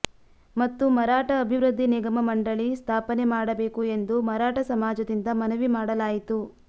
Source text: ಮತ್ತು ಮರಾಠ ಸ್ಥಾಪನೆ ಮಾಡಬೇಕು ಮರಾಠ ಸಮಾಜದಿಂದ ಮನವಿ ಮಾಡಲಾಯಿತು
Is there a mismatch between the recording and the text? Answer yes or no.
yes